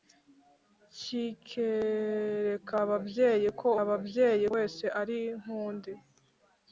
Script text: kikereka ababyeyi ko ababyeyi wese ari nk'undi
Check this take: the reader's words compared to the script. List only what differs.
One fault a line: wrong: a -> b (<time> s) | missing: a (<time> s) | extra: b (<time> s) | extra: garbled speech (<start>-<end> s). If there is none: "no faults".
no faults